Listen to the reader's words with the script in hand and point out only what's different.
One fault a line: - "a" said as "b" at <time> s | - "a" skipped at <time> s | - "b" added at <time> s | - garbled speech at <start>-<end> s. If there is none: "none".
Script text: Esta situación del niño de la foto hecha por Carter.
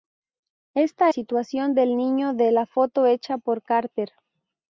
none